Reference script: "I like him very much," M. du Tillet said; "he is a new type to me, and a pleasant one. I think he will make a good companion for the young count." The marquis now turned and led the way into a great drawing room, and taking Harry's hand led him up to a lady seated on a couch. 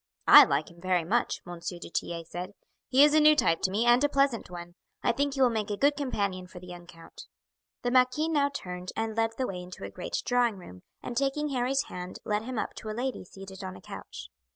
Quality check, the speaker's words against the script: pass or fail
pass